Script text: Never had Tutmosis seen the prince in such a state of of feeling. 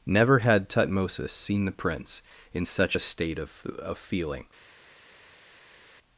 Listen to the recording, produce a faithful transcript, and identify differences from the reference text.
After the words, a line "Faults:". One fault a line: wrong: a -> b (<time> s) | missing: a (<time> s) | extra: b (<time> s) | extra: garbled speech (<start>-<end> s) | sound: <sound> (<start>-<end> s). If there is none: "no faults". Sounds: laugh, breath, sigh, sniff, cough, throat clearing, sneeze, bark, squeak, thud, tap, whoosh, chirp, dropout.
Never had Tutmosis seen the prince in such a state of of feeling.
Faults:
no faults